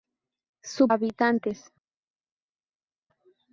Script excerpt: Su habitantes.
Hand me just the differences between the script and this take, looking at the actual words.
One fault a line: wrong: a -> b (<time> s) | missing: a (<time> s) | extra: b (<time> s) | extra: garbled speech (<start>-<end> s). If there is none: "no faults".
no faults